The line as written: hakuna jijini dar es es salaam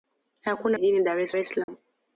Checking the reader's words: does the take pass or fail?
pass